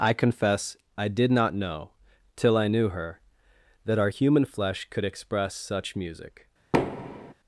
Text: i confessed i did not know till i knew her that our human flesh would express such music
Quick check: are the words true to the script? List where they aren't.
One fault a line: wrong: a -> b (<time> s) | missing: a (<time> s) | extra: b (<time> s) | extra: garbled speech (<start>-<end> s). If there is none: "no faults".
wrong: confessed -> confess (0.1 s)
wrong: would -> could (4.9 s)